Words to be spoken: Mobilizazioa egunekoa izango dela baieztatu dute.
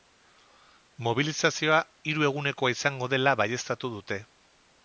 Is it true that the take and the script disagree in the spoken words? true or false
true